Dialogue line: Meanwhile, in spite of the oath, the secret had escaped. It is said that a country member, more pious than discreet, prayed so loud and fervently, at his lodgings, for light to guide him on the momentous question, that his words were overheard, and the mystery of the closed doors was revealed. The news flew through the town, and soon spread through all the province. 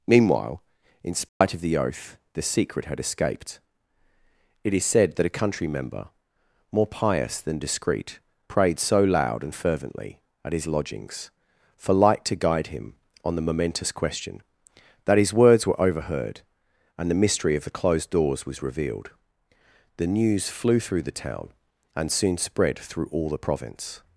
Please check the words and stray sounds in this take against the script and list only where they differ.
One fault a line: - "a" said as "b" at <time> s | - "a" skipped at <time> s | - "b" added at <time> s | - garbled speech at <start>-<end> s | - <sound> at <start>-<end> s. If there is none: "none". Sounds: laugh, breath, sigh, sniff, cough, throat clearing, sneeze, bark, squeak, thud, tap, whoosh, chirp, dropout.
- dropout at 1.3-1.4 s